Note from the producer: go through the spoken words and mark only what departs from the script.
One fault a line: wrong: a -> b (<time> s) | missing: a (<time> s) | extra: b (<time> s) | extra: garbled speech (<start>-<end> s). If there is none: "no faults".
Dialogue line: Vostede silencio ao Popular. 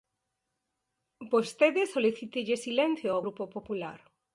extra: solicítelle (1.9 s)
extra: Grupo (3.2 s)